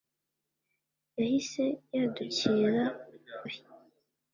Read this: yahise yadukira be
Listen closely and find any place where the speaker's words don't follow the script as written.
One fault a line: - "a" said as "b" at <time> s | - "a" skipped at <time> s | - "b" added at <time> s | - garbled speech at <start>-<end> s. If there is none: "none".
none